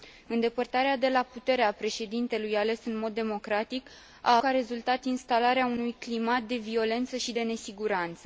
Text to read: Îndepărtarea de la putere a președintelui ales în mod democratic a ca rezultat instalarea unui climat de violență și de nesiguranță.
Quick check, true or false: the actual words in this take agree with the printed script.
true